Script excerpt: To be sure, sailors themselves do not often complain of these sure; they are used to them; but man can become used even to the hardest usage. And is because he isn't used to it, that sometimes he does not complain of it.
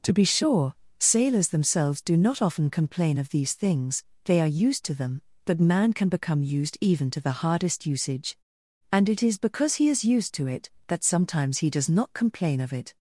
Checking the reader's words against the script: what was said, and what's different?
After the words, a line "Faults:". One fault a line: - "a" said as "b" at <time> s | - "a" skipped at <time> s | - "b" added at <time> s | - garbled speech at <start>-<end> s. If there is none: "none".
To be sure, sailors themselves do not often complain of these things; they are used to them; but man can become used even to the hardest usage. And it is because he is used to it, that sometimes he does not complain of it.
Faults:
- "sure" said as "things" at 3.5 s
- "it" added at 9.1 s
- "isn't" said as "is" at 9.9 s